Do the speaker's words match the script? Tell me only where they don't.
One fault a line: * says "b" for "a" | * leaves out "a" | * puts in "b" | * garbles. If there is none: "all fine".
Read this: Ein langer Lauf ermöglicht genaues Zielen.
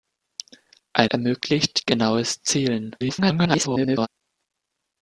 * leaves out "langer Lauf"
* garbles